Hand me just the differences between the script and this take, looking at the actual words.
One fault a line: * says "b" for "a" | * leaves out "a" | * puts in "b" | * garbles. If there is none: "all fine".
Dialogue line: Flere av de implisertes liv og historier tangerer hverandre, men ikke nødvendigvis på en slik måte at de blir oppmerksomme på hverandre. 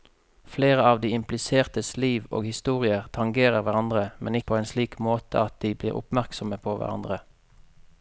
* leaves out "ikke nødvendigvis"